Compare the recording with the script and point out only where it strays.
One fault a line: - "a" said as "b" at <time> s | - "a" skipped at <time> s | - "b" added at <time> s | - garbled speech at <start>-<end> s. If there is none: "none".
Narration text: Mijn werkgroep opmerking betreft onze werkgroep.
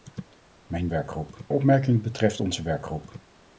none